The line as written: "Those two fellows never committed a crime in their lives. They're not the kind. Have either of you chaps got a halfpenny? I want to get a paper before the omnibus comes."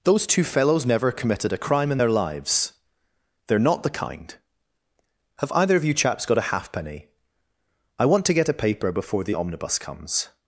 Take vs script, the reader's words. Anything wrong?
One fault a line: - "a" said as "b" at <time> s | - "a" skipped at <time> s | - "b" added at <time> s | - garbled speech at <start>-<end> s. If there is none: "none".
none